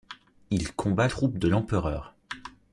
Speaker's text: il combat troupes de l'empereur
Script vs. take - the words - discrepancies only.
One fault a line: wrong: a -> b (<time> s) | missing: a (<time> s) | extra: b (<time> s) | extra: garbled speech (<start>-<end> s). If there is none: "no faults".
no faults